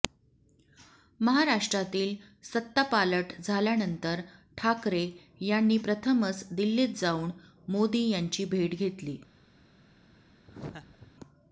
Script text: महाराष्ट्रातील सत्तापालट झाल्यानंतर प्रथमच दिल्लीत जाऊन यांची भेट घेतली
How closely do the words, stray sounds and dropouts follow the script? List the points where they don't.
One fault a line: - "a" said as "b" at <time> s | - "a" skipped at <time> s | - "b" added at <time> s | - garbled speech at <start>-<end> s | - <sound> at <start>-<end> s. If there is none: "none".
- "ठाकरे यांनी" added at 4.6 s
- "मोदी" added at 7.7 s
- laugh at 10.5-11.1 s